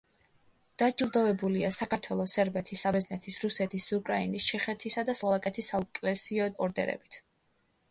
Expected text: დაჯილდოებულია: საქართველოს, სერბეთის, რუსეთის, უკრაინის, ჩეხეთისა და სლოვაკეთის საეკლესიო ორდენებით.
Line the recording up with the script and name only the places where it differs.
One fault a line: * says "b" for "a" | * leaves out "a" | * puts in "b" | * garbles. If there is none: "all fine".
* puts in "საბერძნეთის"